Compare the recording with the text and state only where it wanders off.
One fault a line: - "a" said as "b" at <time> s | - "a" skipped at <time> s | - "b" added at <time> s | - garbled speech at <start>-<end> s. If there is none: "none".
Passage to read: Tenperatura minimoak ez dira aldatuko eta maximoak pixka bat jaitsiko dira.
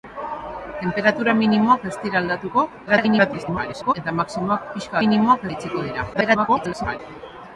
- garbled speech at 2.9-3.9 s
- "bat" said as "minimoak" at 5.0 s
- garbled speech at 6.1-7.0 s